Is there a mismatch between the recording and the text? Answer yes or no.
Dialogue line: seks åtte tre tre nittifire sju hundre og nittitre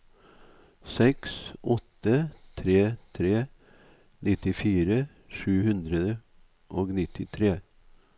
no